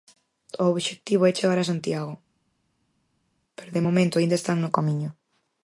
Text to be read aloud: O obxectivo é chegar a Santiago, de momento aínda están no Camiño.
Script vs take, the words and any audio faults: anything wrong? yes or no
yes